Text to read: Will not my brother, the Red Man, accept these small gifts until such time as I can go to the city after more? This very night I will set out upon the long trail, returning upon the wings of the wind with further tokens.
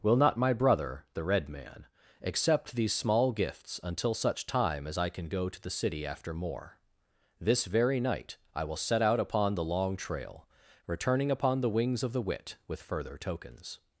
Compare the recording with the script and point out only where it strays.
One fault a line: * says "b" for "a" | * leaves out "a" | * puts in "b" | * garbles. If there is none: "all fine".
* says "wit" for "wind"